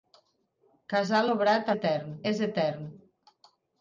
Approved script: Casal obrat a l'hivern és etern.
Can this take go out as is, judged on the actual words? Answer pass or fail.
fail